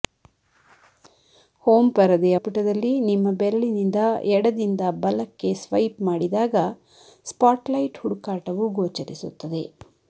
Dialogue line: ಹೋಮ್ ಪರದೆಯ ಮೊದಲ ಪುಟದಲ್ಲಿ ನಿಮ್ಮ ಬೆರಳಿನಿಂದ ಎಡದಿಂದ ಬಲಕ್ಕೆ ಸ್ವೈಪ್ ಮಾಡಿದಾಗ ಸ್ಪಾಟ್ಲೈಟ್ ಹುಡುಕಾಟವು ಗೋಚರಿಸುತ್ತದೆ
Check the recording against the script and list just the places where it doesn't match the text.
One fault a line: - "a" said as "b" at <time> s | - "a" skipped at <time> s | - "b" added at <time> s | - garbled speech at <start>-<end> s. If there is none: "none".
- "ಮೊದಲ" skipped at 2.4 s